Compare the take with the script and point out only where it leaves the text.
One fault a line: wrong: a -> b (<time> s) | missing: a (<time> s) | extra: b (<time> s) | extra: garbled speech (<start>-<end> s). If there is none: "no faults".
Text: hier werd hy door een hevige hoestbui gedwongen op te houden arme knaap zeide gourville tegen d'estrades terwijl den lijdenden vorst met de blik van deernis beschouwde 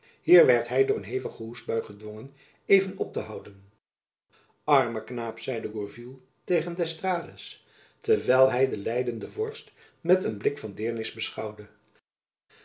extra: even (2.6 s)
extra: hy (8.5 s)
wrong: de -> een (10.2 s)